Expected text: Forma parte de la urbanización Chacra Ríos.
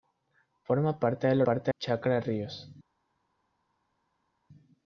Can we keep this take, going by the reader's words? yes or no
no